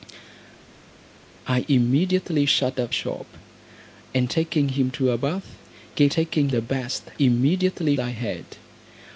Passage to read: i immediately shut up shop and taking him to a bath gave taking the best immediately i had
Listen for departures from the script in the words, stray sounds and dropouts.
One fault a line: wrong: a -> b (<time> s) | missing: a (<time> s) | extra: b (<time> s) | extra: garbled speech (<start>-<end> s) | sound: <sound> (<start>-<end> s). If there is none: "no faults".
no faults